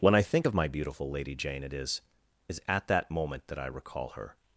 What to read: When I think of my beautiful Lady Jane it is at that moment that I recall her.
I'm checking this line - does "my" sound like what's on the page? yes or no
yes